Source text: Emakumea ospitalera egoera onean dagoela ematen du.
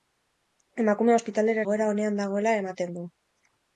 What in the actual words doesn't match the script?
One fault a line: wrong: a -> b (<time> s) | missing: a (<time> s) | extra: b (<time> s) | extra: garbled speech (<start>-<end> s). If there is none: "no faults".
no faults